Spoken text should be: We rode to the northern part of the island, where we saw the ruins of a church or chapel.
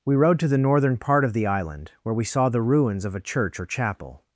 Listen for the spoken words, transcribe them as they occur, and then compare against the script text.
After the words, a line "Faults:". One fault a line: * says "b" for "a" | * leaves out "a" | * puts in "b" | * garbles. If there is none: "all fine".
We rode to the northern part of the island, where we saw the ruins of a church or chapel.
Faults:
all fine